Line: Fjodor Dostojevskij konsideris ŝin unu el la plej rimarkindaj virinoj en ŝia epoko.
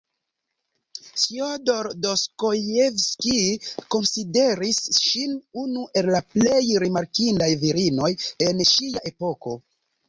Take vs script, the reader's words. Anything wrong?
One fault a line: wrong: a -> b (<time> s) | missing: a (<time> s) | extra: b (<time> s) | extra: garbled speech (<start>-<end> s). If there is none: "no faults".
no faults